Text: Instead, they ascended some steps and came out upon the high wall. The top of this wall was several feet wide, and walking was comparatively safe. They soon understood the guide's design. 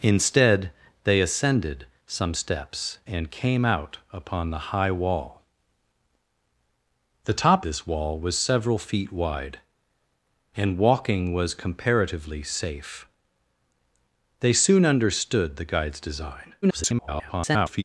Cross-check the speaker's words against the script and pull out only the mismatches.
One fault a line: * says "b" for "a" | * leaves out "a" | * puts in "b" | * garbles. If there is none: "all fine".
* leaves out "of"
* garbles